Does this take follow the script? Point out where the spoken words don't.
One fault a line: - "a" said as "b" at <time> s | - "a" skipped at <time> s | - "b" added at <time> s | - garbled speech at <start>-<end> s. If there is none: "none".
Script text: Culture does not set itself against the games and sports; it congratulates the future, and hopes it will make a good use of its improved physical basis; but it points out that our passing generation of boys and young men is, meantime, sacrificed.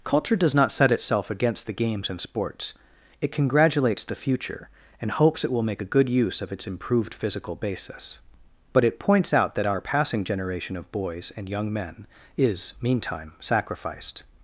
none